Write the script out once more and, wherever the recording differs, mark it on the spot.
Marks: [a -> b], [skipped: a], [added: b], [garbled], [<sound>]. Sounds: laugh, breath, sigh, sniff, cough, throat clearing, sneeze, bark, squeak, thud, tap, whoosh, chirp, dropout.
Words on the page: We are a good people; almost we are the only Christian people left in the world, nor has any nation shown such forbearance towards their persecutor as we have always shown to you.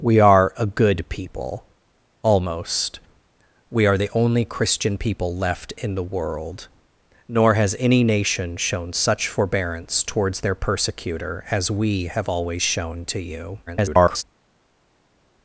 We are a good people; almost we are the only Christian people left in the world, nor has any nation shown such forbearance towards their persecutor as we have always shown to you. [garbled]